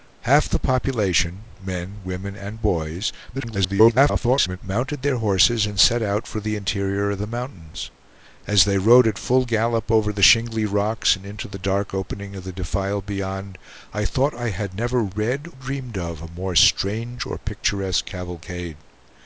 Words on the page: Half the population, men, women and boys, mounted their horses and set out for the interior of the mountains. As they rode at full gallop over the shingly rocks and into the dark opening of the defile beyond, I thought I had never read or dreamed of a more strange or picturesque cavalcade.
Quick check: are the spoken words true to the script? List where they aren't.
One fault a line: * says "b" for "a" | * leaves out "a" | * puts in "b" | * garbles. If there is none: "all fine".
* garbles
* leaves out "or"